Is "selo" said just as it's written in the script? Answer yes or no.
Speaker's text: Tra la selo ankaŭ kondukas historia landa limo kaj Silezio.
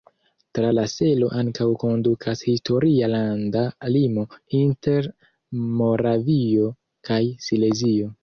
yes